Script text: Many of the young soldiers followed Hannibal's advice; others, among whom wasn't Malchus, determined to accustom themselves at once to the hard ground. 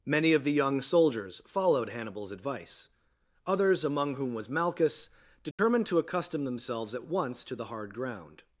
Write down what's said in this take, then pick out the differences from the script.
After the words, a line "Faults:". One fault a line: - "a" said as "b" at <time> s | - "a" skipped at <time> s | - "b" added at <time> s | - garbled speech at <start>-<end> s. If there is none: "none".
Many of the young soldiers followed Hannibal's advice; others, among whom was Malchus, determined to accustom themselves at once to the hard ground.
Faults:
- "wasn't" said as "was" at 4.3 s